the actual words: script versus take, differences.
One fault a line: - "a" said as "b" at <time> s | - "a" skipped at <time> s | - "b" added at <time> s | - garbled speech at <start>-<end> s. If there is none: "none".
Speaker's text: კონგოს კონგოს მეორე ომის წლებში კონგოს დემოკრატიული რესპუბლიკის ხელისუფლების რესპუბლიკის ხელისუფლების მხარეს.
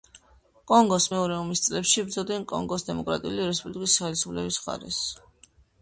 - "კონგოს" skipped at 1.1 s
- "იბრძოდნენ" added at 2.0 s
- "რესპუბლიკის ხელისუფლების" skipped at 4.6 s